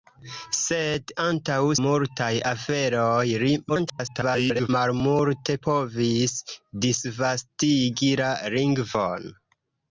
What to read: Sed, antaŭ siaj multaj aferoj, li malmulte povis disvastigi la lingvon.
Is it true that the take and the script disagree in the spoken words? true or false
true